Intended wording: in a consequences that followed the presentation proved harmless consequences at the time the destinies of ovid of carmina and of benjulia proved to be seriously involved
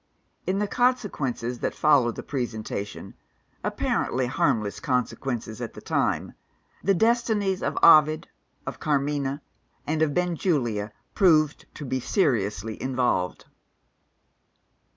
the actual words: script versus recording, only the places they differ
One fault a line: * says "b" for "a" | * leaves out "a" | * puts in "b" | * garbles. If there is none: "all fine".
* says "the" for "a"
* says "apparently" for "proved"